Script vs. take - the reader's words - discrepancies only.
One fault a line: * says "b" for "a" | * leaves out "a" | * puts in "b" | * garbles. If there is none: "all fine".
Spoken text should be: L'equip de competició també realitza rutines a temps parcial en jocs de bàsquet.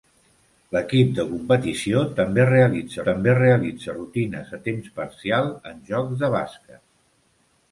* puts in "també realitza"